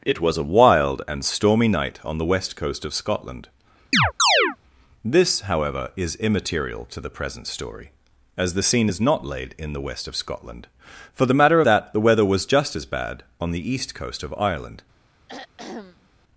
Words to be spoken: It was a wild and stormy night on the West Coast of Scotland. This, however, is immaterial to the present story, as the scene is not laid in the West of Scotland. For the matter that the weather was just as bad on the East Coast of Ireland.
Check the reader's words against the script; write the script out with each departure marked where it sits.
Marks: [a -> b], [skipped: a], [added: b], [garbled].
It was a wild and stormy night on the West Coast of Scotland. This, however, is immaterial to the present story, as the scene is not laid in the West of Scotland. For the matter that the weather was just as bad on the East Coast of Ireland.